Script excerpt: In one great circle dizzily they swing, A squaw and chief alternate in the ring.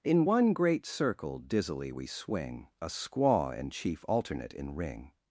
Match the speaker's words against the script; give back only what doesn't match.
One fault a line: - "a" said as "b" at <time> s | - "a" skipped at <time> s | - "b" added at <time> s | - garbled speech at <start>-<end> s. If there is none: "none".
- "they" said as "we" at 1.9 s
- "the" skipped at 4.7 s